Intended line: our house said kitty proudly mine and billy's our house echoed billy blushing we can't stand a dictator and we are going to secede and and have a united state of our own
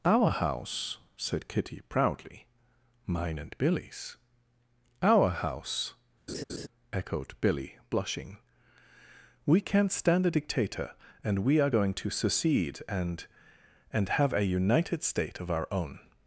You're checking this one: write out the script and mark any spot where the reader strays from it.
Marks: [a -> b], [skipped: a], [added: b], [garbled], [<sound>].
our house said kitty proudly mine and billy's our house [laugh] echoed billy blushing we can't stand a dictator and we are going to secede and and have a united state of our own